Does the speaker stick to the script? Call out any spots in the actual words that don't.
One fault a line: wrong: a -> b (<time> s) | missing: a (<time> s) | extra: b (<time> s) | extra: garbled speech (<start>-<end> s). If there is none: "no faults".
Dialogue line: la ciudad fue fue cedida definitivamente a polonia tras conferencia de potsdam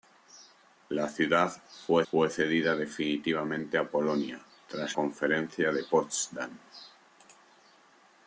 no faults